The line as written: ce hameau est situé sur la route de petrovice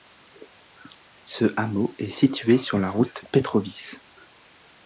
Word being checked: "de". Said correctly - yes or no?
no